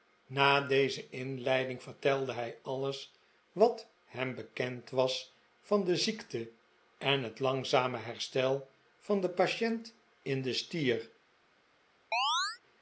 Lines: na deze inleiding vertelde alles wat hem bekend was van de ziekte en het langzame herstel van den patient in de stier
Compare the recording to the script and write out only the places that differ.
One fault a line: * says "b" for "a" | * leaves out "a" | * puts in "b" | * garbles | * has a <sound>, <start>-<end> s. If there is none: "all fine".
* puts in "hij"
* has a chirp, 12.1-12.6 s